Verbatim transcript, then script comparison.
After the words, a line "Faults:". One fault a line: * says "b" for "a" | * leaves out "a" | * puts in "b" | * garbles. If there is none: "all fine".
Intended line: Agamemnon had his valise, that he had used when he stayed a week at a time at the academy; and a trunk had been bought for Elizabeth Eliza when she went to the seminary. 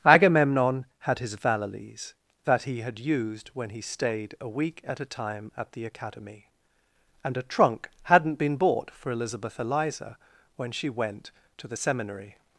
Agamemnon had his valise, that he had used when he stayed a week at a time at the academy; and a trunk hadn't been bought for Elizabeth Eliza when she went to the seminary.
Faults:
* says "hadn't" for "had"